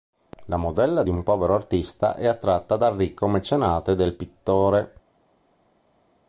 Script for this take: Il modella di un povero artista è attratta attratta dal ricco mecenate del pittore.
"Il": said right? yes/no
no